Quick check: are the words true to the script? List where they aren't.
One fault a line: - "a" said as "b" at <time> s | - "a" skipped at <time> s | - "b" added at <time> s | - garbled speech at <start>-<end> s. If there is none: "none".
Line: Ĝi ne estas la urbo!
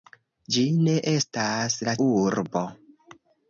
none